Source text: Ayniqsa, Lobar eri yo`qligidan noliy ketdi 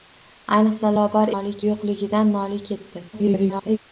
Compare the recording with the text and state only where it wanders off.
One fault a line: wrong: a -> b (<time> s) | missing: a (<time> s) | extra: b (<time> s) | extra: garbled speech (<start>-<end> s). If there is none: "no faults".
wrong: eri -> noliy (1.3 s)
extra: garbled speech (3.1-3.8 s)